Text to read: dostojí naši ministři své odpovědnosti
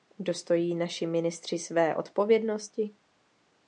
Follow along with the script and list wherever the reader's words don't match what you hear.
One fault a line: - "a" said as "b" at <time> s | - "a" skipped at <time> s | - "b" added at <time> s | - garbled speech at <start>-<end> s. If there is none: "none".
none